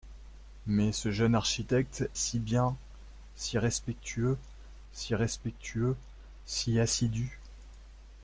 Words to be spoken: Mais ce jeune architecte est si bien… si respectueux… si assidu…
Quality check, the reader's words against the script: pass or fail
fail